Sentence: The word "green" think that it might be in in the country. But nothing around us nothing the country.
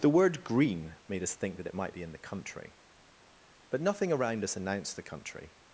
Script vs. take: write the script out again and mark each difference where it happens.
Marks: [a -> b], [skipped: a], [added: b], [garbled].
The word "green" [added: made us] think that it might be in [skipped: in] the country. But nothing around us [nothing -> announced] the country.